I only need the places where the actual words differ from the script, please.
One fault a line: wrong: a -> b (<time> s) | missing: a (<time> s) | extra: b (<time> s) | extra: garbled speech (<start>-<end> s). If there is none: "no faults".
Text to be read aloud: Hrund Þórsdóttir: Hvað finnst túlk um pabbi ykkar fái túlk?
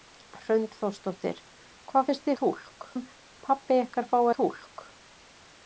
no faults